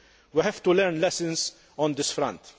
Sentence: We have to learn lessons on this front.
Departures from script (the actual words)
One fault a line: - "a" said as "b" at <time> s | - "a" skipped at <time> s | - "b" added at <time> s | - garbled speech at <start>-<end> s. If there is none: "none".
none